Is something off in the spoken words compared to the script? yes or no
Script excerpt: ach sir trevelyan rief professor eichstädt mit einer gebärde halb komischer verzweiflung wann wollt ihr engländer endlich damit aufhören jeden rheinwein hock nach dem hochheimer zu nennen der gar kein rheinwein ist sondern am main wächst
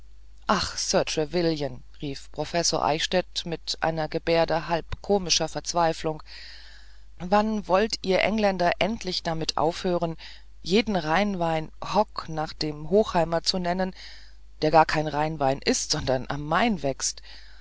no